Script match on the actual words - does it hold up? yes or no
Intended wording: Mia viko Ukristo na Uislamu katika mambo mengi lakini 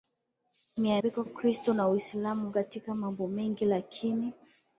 yes